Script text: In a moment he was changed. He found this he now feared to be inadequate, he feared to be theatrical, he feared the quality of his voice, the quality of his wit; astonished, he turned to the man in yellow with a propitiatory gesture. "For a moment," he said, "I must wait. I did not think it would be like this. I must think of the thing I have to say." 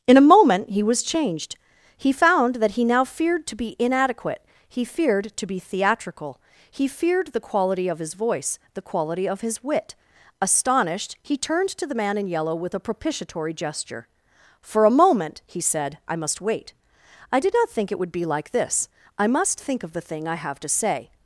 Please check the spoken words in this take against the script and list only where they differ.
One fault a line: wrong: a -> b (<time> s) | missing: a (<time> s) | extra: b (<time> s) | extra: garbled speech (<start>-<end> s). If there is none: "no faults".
wrong: this -> that (2.5 s)